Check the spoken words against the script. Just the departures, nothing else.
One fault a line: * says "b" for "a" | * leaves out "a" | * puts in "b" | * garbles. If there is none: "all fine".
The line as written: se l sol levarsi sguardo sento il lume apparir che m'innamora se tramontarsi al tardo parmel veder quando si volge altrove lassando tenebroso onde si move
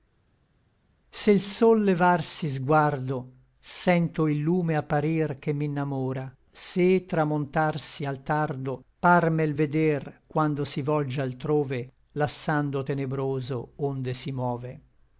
all fine